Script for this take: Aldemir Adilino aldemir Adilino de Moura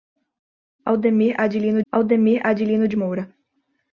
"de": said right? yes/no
yes